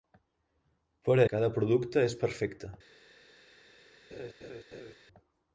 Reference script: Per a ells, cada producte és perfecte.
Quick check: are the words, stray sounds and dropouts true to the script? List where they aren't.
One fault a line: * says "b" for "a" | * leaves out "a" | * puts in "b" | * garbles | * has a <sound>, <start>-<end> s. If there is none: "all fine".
* leaves out "ells"
* has a laugh, 4.1-4.9 s